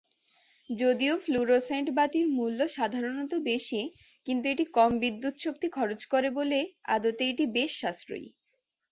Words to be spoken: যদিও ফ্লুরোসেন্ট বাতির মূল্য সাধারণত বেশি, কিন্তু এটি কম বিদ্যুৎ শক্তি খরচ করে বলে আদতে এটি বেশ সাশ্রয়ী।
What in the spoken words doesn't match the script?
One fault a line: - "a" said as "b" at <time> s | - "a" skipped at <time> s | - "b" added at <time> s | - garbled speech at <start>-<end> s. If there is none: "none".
none